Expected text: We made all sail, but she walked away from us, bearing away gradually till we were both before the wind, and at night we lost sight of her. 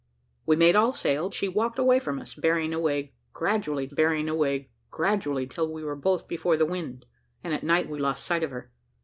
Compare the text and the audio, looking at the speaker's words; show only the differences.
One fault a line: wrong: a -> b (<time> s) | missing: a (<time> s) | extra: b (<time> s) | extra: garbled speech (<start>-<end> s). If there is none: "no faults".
missing: but (1.3 s)
extra: bearing away gradually (3.9 s)